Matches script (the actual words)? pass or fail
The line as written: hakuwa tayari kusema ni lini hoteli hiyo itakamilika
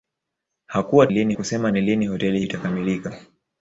fail